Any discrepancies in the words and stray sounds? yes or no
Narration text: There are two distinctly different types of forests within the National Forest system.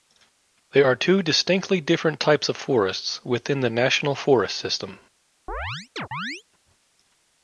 yes